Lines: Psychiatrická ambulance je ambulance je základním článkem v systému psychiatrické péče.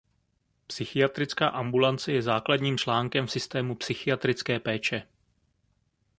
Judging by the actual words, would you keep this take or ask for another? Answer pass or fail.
fail